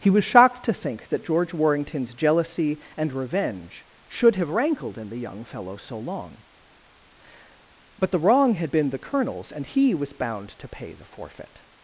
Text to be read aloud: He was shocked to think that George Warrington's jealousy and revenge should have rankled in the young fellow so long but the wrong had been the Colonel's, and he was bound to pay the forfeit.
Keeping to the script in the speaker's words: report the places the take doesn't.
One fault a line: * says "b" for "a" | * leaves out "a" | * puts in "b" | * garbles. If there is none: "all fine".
all fine